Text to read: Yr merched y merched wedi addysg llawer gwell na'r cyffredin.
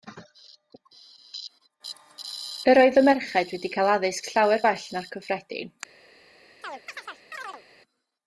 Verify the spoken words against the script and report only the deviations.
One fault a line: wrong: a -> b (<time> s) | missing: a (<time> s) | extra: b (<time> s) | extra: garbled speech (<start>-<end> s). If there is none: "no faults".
wrong: merched -> oedd (2.9 s)
extra: cael (3.8 s)